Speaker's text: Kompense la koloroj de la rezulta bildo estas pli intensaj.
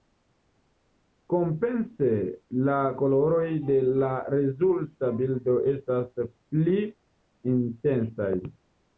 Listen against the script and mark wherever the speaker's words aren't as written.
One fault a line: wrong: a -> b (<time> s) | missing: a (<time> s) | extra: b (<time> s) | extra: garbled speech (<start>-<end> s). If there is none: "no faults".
no faults